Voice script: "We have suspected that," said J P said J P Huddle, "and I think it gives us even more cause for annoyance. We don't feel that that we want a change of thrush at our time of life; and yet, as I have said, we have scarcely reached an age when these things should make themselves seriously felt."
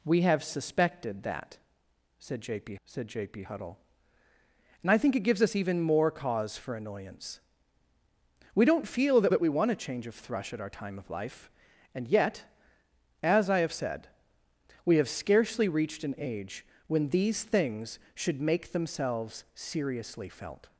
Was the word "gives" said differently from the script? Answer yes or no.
no